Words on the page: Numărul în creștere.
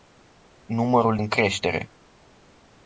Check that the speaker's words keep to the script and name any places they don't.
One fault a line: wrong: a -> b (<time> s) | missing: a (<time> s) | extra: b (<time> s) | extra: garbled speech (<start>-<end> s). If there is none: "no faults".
no faults